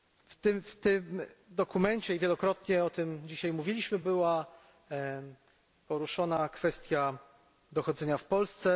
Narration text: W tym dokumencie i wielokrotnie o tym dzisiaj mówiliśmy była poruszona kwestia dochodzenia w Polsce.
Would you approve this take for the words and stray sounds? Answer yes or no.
yes